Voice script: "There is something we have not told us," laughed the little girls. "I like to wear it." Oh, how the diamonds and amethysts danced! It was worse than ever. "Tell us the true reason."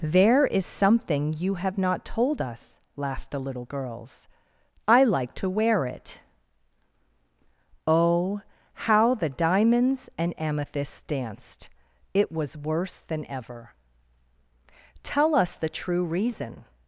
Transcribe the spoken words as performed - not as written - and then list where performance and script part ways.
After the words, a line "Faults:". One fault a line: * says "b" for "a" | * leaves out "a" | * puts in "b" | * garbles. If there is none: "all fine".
"There is something you have not told us," laughed the little girls. "I like to wear it." Oh, how the diamonds and amethysts danced! It was worse than ever. "Tell us the true reason."
Faults:
* says "you" for "we"